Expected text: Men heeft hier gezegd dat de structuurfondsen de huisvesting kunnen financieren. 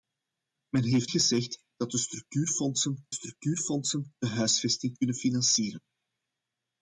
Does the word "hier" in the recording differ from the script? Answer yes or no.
yes